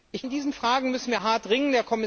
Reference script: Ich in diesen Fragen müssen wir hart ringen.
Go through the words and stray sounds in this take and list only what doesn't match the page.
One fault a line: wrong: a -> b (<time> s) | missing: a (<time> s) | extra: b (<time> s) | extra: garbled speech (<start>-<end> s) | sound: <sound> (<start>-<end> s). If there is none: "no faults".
no faults